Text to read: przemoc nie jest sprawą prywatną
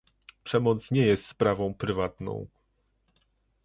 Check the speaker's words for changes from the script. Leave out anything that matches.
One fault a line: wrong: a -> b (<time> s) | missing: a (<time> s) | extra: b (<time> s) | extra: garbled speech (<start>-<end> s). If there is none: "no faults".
no faults